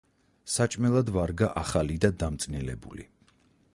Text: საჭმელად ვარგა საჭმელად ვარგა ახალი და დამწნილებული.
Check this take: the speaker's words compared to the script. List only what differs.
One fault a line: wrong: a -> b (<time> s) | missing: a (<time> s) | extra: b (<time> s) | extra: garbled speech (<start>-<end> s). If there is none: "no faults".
missing: საჭმელად ვარგა (1.5 s)